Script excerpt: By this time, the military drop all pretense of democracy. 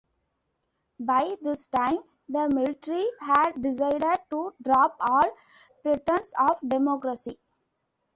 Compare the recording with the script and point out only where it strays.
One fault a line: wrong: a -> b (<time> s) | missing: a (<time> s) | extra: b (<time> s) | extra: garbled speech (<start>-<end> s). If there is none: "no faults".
extra: had decided to (3.2 s)